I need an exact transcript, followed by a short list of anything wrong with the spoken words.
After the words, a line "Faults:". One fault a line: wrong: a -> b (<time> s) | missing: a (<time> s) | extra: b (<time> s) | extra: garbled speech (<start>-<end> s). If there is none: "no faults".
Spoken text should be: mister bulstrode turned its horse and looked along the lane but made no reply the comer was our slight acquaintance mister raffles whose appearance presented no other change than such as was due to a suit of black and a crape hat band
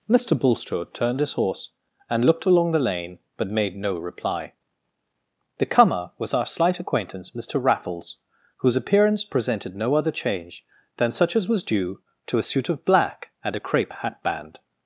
mister bulstrode turned his horse and looked along the lane but made no reply the comer was our slight acquaintance mister raffles whose appearance presented no other change than such as was due to a suit of black and a crape hat band
Faults:
wrong: its -> his (1.2 s)